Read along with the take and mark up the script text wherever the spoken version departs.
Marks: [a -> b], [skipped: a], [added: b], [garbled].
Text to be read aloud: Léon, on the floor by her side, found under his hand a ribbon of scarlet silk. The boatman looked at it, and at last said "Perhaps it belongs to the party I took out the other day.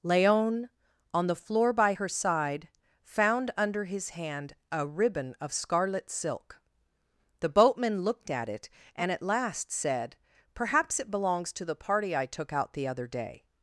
Léon, on the floor by her side, found under his hand a ribbon of scarlet silk. The boatman looked at it, and at last said "Perhaps it belongs to the party I took out the other day.